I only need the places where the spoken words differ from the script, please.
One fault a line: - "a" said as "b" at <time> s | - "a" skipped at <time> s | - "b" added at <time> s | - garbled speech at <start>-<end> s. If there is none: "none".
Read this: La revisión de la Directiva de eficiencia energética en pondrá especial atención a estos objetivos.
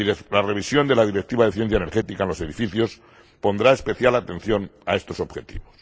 - "los edificios" added at 2.3 s